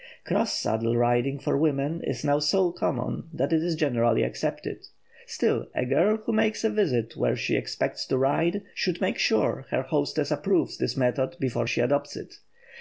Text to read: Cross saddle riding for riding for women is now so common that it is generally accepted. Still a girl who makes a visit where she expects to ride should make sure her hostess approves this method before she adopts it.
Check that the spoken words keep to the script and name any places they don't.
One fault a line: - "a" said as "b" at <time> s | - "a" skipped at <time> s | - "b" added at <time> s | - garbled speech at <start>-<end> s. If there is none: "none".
- "riding for" skipped at 1.6 s